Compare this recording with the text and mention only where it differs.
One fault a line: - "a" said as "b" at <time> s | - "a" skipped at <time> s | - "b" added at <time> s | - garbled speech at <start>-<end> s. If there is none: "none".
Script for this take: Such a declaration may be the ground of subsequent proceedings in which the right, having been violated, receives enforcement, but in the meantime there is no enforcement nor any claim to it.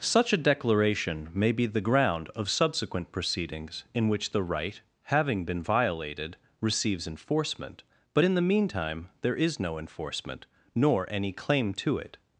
none